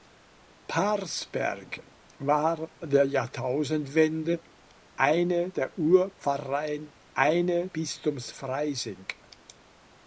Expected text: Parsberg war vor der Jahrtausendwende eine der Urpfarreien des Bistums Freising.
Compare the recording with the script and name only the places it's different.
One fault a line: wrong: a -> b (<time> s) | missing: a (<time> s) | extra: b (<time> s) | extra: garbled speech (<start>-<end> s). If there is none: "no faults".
missing: vor (2.7 s)
wrong: des -> eine (7.1 s)